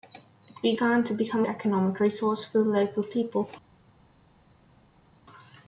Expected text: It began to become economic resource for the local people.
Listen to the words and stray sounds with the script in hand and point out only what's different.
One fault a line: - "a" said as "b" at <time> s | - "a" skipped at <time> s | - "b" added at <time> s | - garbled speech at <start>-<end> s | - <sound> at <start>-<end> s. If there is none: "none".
none